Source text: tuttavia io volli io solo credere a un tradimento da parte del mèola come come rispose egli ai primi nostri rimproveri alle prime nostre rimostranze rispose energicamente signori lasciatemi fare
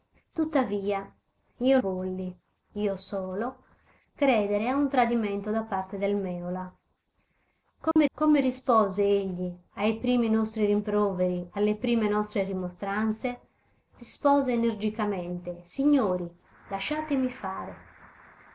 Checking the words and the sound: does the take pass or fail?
fail